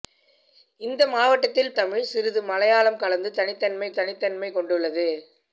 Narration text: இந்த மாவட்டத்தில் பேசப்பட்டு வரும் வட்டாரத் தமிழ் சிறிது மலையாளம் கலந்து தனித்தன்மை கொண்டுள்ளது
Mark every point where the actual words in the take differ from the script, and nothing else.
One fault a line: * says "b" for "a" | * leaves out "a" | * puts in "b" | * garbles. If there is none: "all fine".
* leaves out "பேசப்பட்டு வரும் வட்டாரத்"
* puts in "தனித்தன்மை"